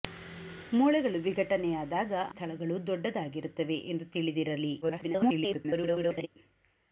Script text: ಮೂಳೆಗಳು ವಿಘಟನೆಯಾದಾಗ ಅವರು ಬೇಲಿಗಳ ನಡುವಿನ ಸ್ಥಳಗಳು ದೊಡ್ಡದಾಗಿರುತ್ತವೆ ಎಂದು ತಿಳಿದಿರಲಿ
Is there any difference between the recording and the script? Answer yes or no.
yes